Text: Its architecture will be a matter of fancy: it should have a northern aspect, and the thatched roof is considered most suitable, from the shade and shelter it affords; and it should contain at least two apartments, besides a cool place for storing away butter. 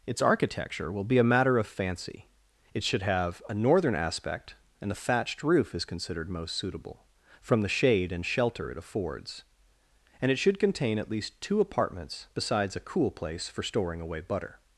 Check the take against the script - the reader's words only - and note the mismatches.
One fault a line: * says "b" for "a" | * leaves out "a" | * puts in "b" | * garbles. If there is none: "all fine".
all fine